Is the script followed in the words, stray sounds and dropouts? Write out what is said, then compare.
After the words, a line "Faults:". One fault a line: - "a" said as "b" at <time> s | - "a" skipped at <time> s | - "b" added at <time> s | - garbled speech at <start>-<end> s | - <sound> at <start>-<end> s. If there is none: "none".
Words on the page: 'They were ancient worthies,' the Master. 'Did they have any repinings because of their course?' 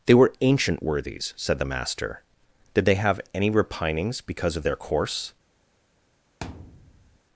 'They were ancient worthies,' said the Master. 'Did they have any repinings because of their course?'
Faults:
- "said" added at 1.4 s
- thud at 6.4-7.2 s